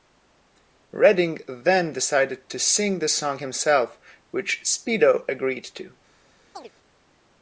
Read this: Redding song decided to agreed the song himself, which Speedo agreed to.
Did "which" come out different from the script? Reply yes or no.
no